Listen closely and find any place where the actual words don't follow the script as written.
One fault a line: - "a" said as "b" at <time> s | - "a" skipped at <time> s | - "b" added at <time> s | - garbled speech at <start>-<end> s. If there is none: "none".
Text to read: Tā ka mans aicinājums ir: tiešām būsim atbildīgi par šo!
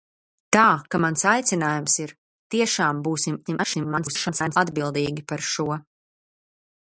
- garbled speech at 3.5-4.6 s